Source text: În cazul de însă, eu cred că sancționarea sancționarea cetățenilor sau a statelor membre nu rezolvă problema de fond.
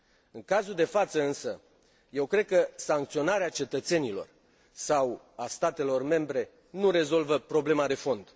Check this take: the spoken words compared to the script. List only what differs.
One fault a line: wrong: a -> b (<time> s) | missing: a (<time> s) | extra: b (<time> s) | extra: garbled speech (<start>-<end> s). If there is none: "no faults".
extra: față (0.8 s)
missing: sancționarea (3.5 s)